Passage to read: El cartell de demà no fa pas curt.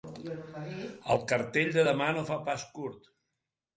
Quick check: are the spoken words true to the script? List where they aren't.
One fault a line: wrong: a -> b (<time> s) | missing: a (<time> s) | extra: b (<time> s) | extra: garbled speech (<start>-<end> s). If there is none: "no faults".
no faults